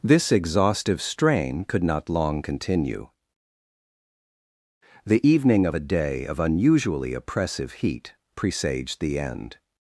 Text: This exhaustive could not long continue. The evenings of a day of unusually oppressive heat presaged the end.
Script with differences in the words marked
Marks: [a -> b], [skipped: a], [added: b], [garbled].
This exhaustive [added: strain] could not long continue. The [evenings -> evening] of a day of unusually oppressive heat presaged the end.